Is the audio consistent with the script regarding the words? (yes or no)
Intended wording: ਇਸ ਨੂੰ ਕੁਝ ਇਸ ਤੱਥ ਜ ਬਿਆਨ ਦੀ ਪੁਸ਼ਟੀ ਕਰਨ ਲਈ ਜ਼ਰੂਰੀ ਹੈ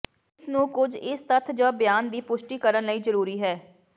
yes